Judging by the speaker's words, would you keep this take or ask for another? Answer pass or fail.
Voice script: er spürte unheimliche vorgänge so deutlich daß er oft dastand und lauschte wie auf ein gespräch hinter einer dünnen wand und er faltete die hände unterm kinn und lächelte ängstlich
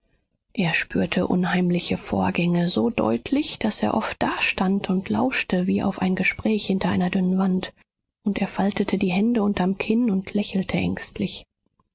pass